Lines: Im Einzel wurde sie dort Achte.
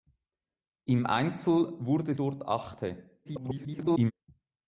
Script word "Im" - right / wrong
right